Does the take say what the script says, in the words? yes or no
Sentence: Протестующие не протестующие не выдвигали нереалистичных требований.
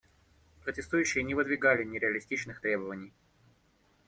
no